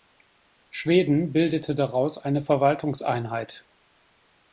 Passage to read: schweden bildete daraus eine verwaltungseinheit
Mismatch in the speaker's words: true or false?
false